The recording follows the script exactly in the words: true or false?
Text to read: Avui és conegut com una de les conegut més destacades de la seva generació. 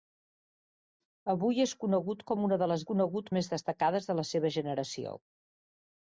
true